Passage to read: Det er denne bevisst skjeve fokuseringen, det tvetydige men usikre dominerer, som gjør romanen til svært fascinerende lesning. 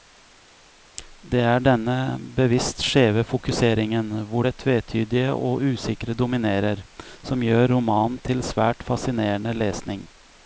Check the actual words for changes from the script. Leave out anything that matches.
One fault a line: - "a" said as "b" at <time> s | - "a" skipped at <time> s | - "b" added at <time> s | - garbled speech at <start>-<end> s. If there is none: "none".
- "hvor" added at 4.3 s
- "men" said as "og" at 5.3 s